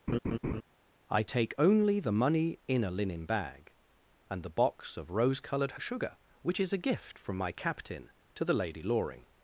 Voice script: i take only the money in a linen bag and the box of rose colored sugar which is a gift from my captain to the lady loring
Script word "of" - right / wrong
right